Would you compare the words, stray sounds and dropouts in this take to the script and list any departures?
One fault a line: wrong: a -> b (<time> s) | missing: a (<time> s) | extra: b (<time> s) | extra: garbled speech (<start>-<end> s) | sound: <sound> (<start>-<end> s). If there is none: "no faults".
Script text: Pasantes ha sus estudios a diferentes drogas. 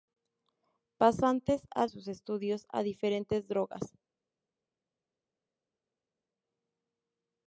no faults